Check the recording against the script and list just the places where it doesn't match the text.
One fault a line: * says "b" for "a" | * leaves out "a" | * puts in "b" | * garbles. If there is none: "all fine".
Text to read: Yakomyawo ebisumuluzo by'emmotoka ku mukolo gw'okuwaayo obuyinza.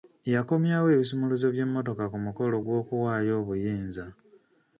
all fine